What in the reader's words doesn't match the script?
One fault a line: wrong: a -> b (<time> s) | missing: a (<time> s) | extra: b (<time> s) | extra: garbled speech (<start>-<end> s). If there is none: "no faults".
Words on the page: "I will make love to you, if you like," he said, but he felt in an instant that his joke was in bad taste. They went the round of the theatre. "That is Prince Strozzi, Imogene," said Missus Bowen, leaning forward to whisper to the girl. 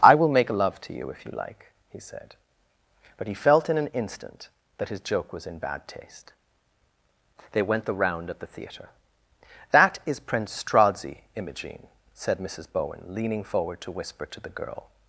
no faults